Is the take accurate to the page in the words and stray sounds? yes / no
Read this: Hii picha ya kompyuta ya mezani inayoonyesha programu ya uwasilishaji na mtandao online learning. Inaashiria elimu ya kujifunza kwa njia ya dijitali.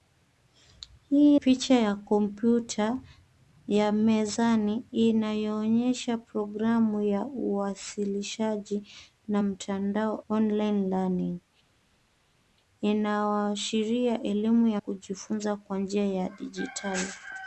yes